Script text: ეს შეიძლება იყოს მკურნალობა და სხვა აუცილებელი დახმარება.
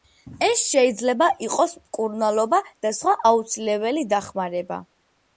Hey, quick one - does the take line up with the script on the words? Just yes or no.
yes